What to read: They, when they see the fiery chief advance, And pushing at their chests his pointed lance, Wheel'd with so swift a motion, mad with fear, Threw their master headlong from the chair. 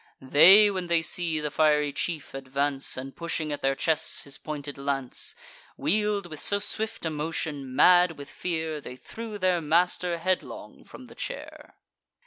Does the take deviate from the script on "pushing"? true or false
false